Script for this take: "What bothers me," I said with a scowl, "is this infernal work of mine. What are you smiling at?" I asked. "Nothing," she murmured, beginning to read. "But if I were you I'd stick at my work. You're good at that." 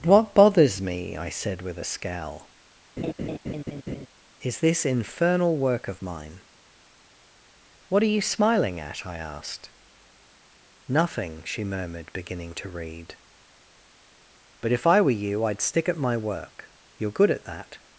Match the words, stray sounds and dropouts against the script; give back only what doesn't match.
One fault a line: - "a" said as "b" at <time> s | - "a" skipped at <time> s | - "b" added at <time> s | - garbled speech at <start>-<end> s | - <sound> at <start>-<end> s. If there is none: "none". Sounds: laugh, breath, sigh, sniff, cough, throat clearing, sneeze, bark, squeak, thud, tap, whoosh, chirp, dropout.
- laugh at 3.0-4.1 s